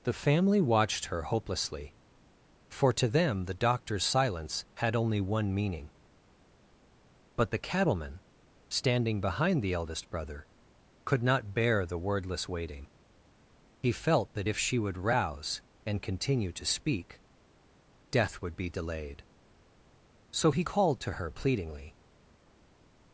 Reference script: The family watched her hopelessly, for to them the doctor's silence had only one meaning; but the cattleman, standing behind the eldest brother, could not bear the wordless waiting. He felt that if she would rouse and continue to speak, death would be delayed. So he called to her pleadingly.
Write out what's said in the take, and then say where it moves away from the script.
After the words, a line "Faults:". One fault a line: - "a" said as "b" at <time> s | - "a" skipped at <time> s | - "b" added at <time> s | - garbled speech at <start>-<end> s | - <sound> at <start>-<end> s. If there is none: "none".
The family watched her hopelessly, for to them the doctor's silence had only one meaning; but the cattleman, standing behind the eldest brother, could not bear the wordless waiting. He felt that if she would rouse and continue to speak, death would be delayed. So he called to her pleadingly.
Faults:
none